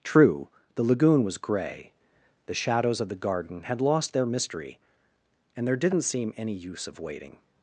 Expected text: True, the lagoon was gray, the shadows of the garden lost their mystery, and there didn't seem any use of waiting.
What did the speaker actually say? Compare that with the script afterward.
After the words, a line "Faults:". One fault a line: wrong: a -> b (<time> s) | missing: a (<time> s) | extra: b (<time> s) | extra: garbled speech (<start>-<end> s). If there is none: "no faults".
True, the lagoon was gray, the shadows of the garden had lost their mystery, and there didn't seem any use of waiting.
Faults:
extra: had (3.6 s)